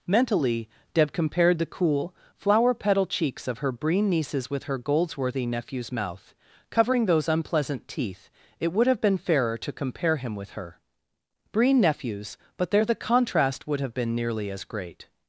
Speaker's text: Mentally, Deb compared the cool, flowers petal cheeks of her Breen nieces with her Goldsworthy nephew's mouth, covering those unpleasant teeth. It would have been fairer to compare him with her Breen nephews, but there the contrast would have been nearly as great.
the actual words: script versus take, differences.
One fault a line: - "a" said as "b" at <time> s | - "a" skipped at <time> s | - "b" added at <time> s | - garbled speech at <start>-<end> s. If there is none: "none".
- "flowers" said as "flower" at 2.3 s